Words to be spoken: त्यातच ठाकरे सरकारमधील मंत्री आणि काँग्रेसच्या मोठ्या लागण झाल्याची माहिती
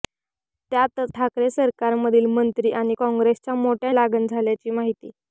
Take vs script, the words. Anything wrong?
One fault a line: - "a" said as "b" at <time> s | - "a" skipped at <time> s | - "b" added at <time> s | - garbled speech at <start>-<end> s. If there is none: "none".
none